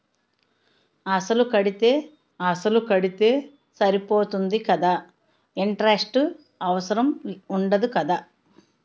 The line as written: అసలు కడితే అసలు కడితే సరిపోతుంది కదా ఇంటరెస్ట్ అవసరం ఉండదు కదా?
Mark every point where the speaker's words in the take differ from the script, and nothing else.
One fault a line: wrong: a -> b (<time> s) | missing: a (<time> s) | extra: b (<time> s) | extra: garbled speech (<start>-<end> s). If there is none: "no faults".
no faults